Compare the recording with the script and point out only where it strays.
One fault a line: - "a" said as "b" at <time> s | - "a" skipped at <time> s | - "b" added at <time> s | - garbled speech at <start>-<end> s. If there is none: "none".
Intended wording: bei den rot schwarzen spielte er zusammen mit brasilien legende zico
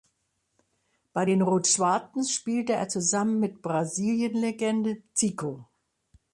none